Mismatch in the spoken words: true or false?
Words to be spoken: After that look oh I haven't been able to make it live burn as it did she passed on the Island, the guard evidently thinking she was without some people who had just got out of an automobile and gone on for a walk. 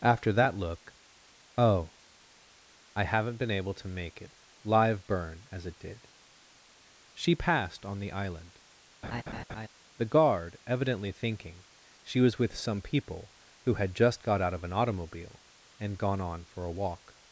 true